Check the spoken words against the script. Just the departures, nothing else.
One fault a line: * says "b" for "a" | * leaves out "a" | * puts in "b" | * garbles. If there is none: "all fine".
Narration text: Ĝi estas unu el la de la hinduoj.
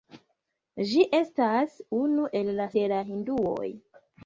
all fine